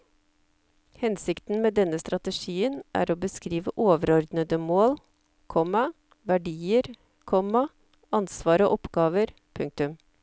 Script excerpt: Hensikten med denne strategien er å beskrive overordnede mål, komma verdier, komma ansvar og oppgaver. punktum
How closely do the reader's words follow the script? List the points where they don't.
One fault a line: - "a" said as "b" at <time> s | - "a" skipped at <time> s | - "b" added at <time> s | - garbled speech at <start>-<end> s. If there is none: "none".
none